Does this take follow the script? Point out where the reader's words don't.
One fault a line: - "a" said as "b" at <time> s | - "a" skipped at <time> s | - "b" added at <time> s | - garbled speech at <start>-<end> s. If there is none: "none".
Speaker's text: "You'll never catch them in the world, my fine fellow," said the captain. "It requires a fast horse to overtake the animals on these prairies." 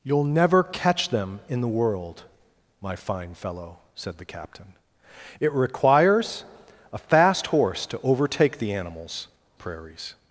- "on these" skipped at 9.3 s